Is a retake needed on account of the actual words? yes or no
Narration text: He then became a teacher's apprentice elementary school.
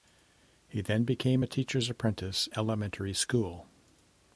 no